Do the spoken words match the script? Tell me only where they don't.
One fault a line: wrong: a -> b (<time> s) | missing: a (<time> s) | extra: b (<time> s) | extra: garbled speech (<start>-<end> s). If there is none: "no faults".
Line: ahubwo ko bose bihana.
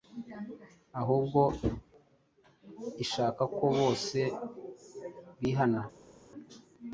extra: ishaka (3.0 s)